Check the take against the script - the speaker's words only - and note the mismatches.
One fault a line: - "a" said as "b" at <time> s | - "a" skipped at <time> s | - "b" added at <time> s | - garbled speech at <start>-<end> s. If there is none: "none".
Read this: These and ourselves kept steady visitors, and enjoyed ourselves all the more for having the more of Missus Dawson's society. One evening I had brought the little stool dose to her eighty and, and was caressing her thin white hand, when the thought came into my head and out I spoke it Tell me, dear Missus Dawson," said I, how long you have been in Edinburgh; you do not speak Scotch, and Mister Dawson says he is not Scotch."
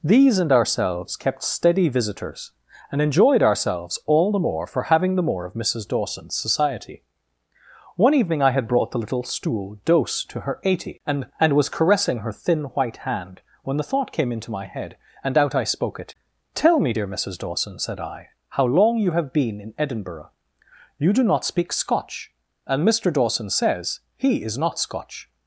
none